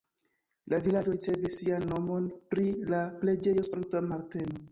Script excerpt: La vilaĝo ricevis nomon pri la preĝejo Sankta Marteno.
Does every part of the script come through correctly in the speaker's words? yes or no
no